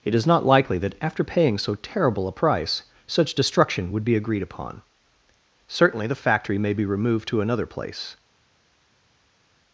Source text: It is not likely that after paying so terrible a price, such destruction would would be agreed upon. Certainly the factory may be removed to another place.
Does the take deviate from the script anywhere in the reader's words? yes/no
yes